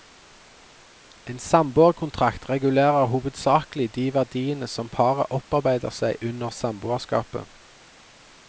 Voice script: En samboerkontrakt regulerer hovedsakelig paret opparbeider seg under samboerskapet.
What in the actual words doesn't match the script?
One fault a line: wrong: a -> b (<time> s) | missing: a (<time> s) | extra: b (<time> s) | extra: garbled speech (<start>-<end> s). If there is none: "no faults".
extra: de verdiene som (4.0 s)